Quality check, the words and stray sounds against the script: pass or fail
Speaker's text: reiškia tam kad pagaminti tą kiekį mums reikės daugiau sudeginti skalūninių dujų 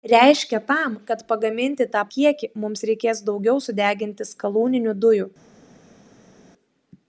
pass